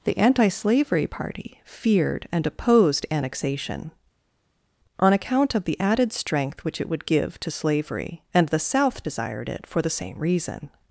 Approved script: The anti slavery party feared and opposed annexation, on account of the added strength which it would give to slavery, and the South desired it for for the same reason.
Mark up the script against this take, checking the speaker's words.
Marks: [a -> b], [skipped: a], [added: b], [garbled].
The anti slavery party feared and opposed annexation, on account of the added strength which it would give to slavery, and the South desired it for [skipped: for] the same reason.